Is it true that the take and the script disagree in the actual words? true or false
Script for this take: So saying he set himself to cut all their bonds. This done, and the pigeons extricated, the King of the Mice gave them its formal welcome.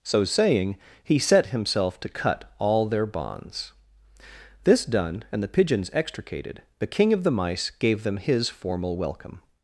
true